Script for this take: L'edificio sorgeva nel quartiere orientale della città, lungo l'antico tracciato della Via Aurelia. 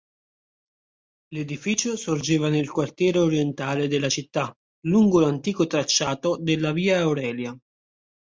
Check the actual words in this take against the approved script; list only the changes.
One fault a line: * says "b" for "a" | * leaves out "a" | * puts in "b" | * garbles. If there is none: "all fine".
all fine